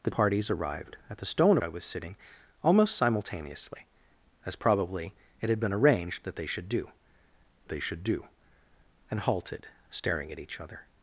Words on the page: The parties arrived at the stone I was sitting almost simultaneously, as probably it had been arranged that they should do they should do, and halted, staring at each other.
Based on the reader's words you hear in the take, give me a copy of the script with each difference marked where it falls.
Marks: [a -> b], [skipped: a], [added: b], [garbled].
The parties arrived at the stone I was sitting almost simultaneously, as probably it had been arranged that they should do they should do, and halted, staring at each other.